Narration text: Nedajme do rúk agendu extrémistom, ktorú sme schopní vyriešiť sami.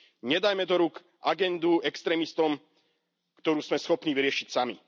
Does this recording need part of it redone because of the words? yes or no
no